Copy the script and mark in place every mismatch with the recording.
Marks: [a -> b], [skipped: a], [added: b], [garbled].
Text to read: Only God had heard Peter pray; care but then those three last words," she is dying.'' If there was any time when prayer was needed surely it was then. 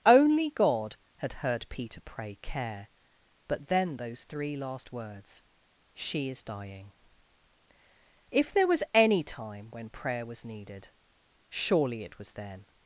Only God had heard Peter pray; care but then those three last words," she is dying.'' If there was any time when prayer was needed surely it was then.